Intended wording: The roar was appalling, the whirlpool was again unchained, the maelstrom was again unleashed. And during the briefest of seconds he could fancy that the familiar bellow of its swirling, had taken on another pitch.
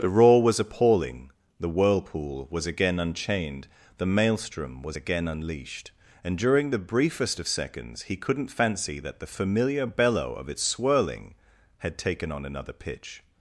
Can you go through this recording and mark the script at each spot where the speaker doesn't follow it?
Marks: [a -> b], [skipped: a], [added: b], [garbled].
The roar was appalling, the whirlpool was again unchained, the maelstrom was again unleashed. And during the briefest of seconds he [could -> couldn't] fancy that the familiar bellow of its swirling, had taken on another pitch.